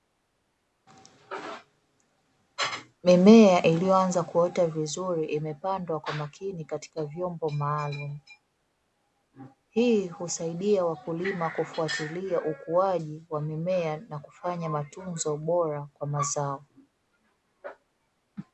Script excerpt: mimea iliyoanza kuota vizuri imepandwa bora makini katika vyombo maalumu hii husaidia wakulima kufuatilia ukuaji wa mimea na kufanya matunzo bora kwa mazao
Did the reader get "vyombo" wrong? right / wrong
right